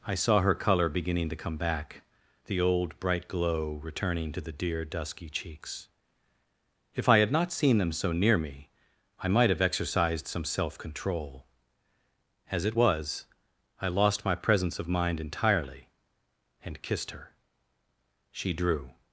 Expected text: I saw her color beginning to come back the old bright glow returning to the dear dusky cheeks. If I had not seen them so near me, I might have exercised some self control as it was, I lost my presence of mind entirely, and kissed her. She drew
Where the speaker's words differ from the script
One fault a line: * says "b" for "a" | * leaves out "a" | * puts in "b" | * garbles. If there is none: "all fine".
all fine